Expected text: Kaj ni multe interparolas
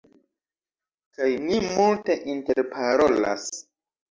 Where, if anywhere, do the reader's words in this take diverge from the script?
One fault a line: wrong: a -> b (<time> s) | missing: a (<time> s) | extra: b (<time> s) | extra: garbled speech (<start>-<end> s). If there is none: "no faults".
no faults